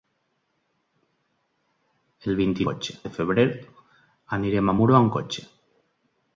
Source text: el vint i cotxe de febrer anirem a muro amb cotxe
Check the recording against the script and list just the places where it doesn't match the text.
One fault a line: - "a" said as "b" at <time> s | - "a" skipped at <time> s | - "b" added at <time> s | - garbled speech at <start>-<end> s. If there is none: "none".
none